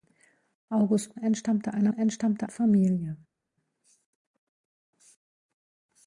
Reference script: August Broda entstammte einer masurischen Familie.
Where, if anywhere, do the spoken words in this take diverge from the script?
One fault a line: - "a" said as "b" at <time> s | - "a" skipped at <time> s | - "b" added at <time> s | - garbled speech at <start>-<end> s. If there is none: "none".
- "Broda" skipped at 1.1 s
- "masurischen" said as "entstammte" at 1.9 s